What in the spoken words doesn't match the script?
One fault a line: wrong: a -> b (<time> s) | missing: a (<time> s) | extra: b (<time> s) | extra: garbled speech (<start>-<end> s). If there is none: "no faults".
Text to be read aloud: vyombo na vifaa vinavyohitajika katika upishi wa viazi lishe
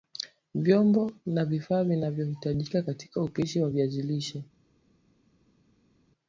no faults